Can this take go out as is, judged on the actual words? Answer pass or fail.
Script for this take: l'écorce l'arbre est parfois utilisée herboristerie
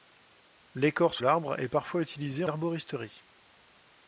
pass